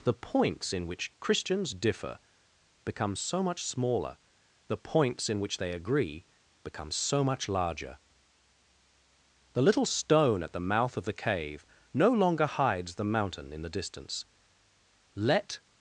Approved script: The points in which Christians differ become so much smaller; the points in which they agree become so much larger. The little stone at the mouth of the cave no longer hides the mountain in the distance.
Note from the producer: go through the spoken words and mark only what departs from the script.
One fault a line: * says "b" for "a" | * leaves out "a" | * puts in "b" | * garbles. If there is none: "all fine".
* puts in "Let"